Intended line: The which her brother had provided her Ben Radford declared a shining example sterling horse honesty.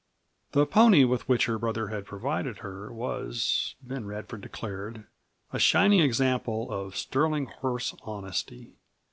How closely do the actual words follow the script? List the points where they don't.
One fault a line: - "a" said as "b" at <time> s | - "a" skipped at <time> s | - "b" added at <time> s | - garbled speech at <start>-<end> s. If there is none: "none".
- "pony with" added at 0.7 s
- "was" added at 2.9 s
- "of" added at 6.7 s